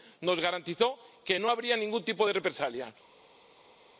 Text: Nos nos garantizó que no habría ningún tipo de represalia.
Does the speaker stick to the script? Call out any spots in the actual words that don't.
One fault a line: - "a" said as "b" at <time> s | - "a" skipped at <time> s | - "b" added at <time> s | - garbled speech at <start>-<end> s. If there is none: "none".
- "nos" skipped at 0.4 s